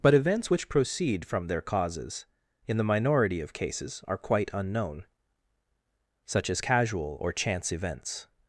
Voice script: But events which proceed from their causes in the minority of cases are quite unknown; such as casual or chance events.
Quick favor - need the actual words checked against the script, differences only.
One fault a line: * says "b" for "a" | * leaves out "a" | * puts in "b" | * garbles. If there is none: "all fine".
all fine